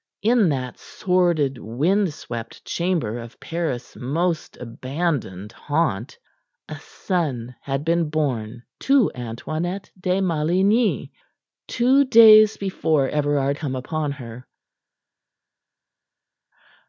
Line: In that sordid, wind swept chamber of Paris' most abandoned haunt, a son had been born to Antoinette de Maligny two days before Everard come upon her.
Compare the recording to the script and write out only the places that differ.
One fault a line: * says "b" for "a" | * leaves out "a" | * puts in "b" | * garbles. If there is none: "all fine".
all fine